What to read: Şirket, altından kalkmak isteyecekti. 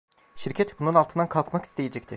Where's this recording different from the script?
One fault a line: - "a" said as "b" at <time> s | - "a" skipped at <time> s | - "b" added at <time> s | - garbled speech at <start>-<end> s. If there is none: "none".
- "bunun" added at 0.8 s